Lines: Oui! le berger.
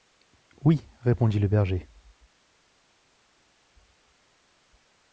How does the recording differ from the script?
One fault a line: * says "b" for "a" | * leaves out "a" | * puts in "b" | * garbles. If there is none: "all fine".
* puts in "répondit"